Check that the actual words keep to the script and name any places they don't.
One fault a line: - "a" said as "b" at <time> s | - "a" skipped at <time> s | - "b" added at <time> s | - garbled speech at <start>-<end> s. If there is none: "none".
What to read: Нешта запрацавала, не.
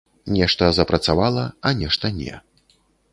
- "а нешта" added at 1.6 s